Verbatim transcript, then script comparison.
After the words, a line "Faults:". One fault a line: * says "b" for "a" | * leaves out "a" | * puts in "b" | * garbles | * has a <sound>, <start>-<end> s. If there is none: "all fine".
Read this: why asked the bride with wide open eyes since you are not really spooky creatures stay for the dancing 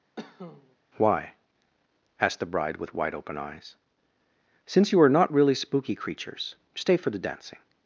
why asked the bride with wide open eyes since you are not really spooky creatures stay for the dancing
Faults:
* has a cough, 0.2-0.8 s